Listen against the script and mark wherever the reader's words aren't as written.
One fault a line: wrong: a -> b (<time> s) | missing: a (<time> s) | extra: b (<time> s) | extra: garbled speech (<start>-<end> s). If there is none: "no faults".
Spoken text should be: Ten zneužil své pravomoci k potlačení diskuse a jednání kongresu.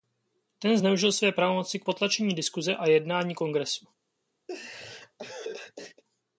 no faults